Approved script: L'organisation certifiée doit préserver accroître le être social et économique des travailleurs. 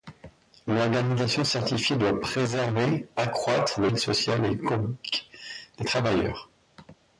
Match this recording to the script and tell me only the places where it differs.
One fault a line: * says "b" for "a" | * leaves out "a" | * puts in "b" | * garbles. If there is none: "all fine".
all fine